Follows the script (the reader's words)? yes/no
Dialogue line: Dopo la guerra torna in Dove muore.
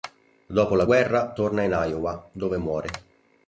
no